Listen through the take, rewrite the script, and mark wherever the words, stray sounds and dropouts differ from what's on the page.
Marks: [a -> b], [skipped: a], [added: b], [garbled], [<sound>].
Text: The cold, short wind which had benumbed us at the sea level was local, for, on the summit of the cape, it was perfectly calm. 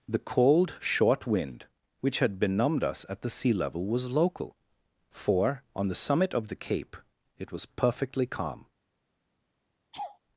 The cold, short wind which had benumbed us at the sea level was local, for, on the summit of the cape, it was perfectly calm. [laugh]